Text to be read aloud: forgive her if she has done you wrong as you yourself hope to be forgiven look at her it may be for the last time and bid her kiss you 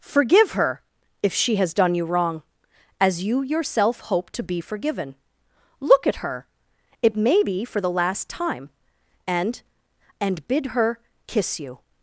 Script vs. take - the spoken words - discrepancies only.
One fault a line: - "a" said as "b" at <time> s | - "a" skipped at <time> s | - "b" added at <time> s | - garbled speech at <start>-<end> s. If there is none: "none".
- "and" added at 10.2 s